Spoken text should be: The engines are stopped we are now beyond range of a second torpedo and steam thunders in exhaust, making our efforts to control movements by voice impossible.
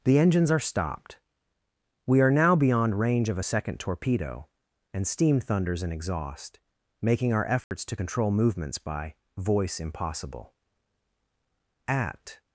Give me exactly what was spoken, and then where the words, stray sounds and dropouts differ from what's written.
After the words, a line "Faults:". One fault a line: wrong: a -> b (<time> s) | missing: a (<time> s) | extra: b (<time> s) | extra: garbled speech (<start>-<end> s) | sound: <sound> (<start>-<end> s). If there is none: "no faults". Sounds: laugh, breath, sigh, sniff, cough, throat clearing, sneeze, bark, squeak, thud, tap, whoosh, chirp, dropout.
The engines are stopped we are now beyond range of a second torpedo and steam thunders in exhaust, making our efforts to control movements by voice impossible. At
Faults:
sound: dropout (7.6-7.7 s)
extra: At (11.9 s)